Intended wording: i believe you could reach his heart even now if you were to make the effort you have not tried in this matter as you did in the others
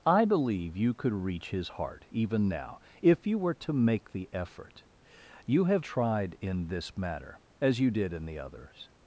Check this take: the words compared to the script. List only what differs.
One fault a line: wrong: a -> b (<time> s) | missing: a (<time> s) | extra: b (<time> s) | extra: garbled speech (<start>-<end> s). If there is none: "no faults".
missing: not (5.8 s)